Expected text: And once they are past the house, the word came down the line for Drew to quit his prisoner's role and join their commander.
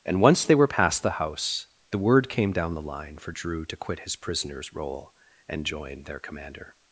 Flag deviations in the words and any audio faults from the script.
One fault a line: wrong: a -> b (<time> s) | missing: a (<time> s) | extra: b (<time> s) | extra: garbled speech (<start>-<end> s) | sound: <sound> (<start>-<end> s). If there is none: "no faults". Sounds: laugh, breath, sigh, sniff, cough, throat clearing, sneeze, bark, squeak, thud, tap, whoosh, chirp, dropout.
wrong: are -> were (0.6 s)